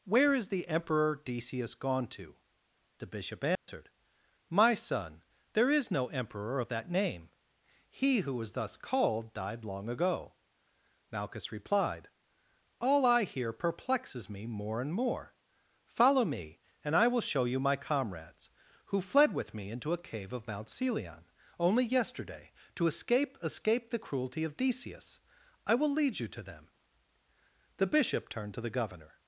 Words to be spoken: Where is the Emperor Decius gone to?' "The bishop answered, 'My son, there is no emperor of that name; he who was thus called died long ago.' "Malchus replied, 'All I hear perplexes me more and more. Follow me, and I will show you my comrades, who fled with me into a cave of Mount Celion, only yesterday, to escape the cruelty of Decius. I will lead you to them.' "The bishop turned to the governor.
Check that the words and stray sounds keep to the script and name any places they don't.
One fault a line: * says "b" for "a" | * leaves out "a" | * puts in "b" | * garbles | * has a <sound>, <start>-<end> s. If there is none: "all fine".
* has a dropout, 3.5-3.7 s
* puts in "escape"